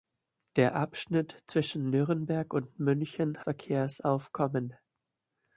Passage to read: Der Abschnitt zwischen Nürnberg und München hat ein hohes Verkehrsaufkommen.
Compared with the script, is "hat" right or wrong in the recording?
wrong